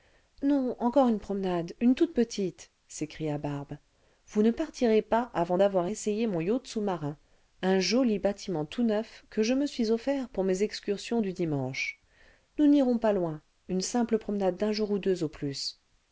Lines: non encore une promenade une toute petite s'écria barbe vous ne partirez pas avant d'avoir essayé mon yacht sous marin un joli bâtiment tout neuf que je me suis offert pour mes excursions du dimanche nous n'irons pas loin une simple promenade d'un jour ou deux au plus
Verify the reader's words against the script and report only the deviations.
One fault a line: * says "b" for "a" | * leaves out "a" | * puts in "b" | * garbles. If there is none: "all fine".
all fine